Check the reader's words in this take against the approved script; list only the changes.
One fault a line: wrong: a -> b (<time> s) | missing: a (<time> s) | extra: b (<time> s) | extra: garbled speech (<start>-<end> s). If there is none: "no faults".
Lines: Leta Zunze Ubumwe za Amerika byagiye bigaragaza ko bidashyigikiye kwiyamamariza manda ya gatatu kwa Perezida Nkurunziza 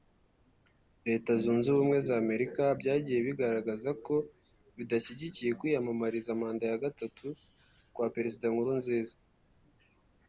no faults